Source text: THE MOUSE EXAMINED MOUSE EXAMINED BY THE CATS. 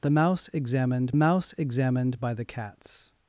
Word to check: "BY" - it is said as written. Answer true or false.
true